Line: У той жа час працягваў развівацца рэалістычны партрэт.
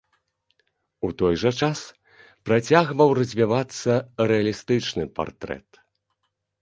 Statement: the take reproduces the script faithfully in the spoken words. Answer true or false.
true